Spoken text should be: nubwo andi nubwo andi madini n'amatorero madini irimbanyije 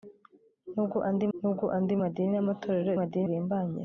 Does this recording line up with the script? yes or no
yes